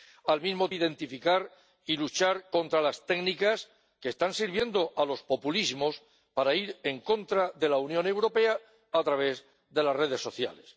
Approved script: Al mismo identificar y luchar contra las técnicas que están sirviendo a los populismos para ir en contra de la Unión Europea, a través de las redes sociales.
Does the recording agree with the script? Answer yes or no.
yes